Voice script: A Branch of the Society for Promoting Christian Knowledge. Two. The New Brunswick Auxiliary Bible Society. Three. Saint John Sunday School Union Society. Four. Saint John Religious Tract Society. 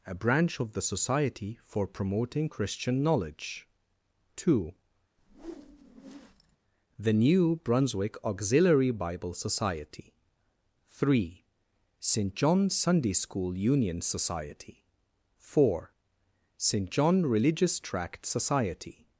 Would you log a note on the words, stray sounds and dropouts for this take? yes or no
yes